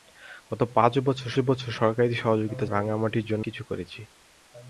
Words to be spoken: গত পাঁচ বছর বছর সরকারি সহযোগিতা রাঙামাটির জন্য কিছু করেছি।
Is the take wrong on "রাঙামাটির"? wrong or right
right